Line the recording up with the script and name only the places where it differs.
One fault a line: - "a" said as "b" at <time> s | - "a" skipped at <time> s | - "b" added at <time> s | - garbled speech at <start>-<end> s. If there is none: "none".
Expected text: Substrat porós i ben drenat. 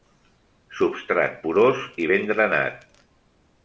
none